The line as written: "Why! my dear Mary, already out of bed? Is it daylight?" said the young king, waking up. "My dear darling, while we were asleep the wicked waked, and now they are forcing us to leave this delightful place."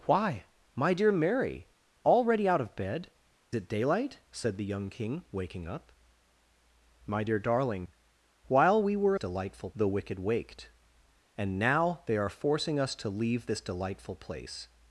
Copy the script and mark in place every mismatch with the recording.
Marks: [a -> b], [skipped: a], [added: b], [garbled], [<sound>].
"Why! my dear Mary, already out of bed? [skipped: Is] it daylight?" said the young king, waking up. "My dear darling, while we were [asleep -> delightful] the wicked waked, and now they are forcing us to leave this delightful place."